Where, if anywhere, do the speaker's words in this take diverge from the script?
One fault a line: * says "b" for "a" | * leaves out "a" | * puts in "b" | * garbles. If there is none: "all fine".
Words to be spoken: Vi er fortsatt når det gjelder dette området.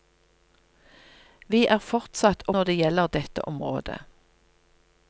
all fine